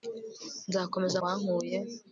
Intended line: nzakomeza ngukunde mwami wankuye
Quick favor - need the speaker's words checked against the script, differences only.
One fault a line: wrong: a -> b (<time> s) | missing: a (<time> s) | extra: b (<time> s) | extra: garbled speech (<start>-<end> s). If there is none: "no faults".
missing: ngukunde mwami (1.2 s)